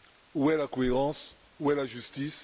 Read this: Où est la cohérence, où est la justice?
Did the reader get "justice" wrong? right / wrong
right